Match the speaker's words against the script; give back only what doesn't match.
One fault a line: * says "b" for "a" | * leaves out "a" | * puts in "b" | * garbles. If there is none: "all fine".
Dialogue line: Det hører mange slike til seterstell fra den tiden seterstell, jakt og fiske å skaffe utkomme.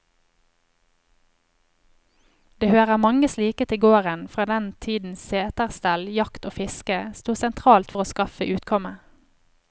* says "gården" for "seterstell"
* puts in "sto sentralt for"